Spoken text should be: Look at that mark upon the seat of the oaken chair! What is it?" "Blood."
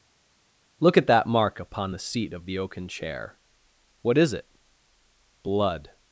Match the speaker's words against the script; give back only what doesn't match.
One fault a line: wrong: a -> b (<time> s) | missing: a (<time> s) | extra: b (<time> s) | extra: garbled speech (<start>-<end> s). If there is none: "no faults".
no faults